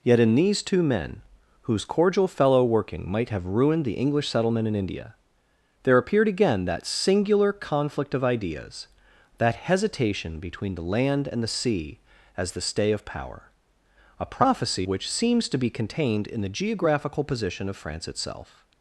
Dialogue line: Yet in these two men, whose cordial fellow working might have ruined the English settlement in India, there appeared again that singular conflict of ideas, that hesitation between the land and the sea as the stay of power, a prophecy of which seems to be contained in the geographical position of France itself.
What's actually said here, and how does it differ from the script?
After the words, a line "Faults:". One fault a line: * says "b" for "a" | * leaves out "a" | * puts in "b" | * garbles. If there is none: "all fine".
Yet in these two men, whose cordial fellow working might have ruined the English settlement in India, there appeared again that singular conflict of ideas, that hesitation between the land and the sea as the stay of power, a prophecy which seems to be contained in the geographical position of France itself.
Faults:
* leaves out "of"